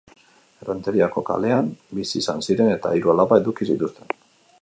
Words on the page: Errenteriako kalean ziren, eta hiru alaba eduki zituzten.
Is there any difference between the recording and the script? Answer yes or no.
yes